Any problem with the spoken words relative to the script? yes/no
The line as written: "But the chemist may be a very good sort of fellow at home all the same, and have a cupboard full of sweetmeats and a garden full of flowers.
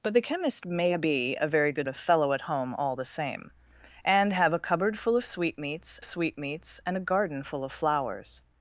yes